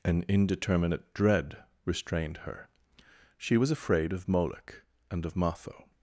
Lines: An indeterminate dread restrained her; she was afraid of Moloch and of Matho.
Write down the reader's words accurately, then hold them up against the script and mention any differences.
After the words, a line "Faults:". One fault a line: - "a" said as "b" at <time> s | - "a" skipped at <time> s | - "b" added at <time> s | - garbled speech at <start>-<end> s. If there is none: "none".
An indeterminate dread restrained her; she was afraid of Moloch and of Matho.
Faults:
none